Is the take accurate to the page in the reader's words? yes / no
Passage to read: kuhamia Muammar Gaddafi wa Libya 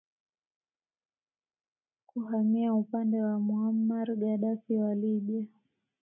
no